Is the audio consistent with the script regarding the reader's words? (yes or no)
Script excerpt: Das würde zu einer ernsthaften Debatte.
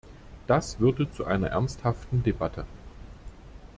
yes